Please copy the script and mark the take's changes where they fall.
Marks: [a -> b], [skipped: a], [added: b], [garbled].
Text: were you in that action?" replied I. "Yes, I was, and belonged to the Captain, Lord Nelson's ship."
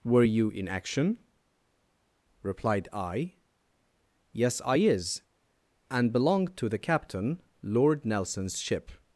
were you in [skipped: that] action?" replied I. "Yes, I [was, -> is] and belonged to the Captain, Lord Nelson's ship."